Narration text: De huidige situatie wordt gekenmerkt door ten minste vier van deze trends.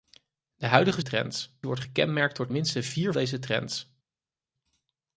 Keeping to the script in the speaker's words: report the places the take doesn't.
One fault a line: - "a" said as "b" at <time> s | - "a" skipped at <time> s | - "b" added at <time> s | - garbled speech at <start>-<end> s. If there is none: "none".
- "situatie" said as "trends" at 1.0 s
- "ten" skipped at 2.5 s
- "van" skipped at 3.1 s